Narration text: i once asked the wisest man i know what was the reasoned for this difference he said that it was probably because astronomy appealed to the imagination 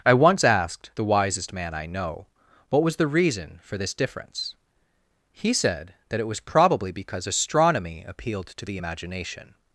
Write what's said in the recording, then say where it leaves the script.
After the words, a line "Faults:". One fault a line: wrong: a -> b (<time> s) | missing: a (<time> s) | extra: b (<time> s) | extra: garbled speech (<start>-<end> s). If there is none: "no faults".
i once asked the wisest man i know what was the reason for this difference he said that it was probably because astronomy appealed to the imagination
Faults:
wrong: reasoned -> reason (3.1 s)